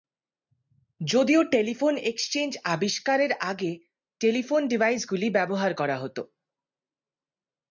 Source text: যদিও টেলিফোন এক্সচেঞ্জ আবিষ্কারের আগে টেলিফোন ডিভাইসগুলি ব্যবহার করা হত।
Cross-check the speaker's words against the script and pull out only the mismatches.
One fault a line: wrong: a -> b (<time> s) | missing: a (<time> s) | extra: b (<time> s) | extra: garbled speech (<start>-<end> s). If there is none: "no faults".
no faults